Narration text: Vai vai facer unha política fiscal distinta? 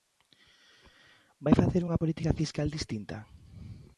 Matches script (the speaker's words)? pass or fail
fail